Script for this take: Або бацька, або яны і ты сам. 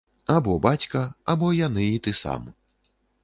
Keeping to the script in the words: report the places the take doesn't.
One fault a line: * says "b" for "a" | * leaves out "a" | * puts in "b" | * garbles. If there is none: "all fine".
all fine